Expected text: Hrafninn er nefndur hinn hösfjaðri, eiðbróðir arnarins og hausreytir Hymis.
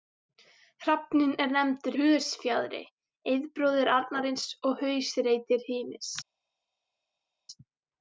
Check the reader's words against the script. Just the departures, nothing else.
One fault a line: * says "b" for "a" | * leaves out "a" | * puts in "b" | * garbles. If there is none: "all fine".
* leaves out "hinn"